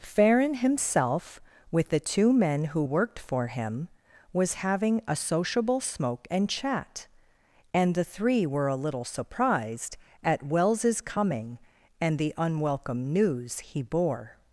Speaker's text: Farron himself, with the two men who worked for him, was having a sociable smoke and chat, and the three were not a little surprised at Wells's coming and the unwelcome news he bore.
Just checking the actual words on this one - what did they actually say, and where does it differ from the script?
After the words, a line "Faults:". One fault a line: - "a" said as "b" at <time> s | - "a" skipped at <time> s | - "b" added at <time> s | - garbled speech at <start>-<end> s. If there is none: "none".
Farron himself, with the two men who worked for him, was having a sociable smoke and chat, and the three were a little surprised at Wells's coming and the unwelcome news he bore.
Faults:
- "not" skipped at 8.7 s